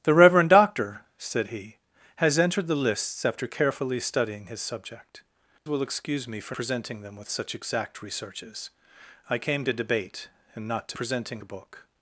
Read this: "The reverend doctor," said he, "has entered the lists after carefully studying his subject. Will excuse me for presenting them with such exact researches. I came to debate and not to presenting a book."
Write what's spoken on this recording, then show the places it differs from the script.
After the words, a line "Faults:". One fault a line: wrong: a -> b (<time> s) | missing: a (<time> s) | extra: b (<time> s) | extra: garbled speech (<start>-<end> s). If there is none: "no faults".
"The reverend doctor," said he, "has entered the lists after carefully studying his subject. Will excuse me for presenting them with such exact researches. I came to debate and not to presenting a book."
Faults:
no faults